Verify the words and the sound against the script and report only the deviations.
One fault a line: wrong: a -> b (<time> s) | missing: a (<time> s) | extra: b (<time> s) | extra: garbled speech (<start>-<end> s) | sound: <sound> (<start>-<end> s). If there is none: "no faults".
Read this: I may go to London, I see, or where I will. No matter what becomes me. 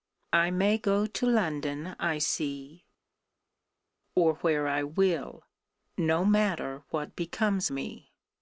no faults